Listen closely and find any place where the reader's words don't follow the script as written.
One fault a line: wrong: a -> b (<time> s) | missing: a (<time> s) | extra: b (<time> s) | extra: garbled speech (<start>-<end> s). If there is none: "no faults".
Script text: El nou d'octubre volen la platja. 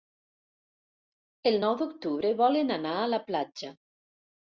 extra: anar a (2.8 s)